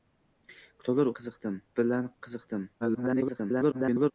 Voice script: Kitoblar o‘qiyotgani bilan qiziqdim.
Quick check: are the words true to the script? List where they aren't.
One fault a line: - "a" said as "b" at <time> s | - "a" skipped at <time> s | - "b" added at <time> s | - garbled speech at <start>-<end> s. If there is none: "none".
- "o‘qiyotgani" said as "qiziqdim" at 1.2 s
- garbled speech at 2.8-4.1 s